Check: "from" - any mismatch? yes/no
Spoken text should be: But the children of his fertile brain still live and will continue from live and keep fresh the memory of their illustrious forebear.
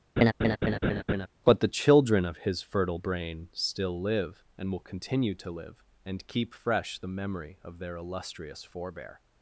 yes